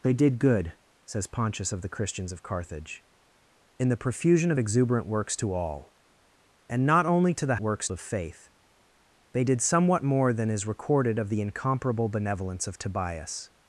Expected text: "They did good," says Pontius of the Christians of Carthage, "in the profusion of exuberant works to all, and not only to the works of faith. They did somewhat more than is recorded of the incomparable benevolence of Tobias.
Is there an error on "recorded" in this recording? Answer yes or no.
no